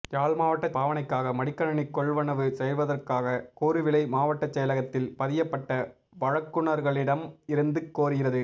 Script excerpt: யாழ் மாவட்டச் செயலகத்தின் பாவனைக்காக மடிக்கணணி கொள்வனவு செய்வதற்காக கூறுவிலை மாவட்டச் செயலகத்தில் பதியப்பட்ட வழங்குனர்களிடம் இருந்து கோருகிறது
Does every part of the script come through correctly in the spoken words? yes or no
no